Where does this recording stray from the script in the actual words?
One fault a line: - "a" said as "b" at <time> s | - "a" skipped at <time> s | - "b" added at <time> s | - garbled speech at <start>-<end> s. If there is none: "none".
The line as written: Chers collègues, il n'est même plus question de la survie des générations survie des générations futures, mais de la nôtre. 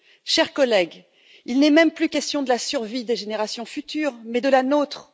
- "survie des générations" skipped at 3.7 s